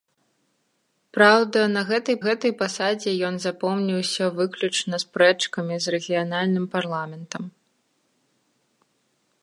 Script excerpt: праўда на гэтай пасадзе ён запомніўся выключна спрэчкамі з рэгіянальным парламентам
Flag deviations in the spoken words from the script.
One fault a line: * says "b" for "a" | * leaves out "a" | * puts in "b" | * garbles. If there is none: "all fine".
* puts in "гэтай"